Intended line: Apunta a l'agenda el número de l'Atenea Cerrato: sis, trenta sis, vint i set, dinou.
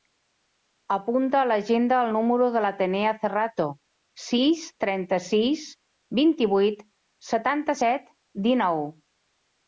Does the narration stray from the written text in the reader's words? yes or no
yes